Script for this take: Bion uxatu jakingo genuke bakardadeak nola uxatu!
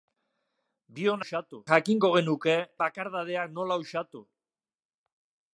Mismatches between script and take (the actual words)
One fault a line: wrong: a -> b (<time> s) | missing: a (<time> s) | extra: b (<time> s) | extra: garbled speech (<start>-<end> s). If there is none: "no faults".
no faults